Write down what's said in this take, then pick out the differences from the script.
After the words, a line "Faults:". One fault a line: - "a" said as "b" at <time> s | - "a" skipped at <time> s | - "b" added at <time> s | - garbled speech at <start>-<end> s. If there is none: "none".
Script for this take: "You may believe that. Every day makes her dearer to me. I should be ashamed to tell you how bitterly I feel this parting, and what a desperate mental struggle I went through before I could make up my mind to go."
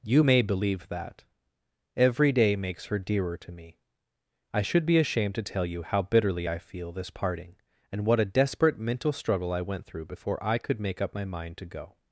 "You may believe that. Every day makes her dearer to me. I should be ashamed to tell you how bitterly I feel this parting, and what a desperate mental struggle I went through before I could make up my mind to go."
Faults:
none